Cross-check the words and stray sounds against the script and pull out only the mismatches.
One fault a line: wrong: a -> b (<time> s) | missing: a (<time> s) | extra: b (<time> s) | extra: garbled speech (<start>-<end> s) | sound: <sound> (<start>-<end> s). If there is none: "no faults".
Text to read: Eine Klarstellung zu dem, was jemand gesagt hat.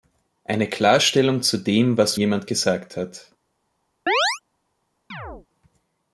sound: chirp (4.1-4.4 s)
sound: chirp (5.1-5.5 s)